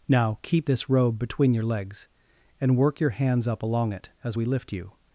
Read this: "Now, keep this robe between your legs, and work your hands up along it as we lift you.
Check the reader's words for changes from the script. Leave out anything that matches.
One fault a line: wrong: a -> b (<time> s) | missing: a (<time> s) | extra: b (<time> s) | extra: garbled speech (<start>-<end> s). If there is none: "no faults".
no faults